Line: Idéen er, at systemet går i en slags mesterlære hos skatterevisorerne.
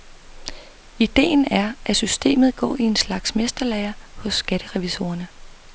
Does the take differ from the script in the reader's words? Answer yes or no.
no